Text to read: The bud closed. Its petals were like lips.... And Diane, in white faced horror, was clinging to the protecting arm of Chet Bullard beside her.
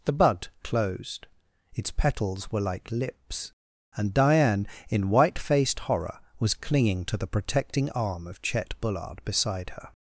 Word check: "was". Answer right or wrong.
right